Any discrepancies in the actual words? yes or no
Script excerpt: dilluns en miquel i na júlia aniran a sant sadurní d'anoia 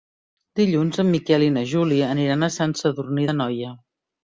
no